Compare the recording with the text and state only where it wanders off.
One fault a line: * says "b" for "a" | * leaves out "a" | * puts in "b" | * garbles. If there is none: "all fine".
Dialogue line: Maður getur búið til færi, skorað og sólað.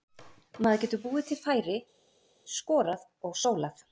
all fine